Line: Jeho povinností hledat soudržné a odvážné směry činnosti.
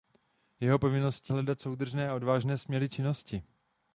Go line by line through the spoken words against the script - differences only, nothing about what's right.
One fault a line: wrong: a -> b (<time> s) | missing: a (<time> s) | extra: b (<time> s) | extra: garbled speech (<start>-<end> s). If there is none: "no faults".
no faults